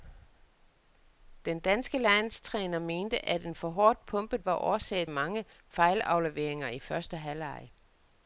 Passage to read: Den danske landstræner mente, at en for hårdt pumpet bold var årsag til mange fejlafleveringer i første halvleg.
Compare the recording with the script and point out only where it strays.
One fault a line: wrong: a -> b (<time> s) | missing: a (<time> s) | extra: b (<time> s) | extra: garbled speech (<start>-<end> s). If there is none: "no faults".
missing: bold (4.5 s)
missing: til (5.1 s)